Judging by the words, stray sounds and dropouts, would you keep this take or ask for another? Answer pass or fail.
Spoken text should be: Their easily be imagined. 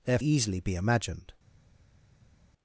pass